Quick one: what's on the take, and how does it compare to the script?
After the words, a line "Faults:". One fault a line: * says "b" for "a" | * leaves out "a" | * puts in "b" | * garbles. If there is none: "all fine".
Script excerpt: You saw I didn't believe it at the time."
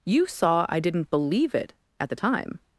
You saw I didn't believe it at the time."
Faults:
all fine